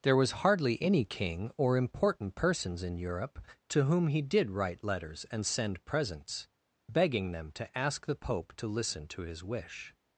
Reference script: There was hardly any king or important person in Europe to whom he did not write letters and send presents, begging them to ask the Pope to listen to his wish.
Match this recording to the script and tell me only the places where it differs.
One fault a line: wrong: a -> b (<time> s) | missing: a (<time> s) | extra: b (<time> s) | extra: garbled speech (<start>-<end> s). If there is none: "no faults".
wrong: person -> persons (2.3 s)
missing: not (4.5 s)